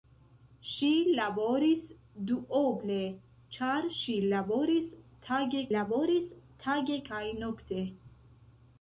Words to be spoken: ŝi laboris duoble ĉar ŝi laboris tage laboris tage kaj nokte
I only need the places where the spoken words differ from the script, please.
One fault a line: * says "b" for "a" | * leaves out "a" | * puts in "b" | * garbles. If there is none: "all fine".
all fine